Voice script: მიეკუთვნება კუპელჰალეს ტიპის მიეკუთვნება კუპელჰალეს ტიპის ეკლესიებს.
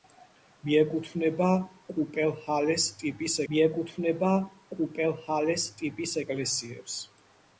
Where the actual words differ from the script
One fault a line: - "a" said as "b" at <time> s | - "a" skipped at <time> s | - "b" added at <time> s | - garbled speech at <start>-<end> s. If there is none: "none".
none